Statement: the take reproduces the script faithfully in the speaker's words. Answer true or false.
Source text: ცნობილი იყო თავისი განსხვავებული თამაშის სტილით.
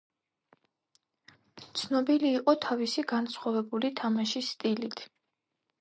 true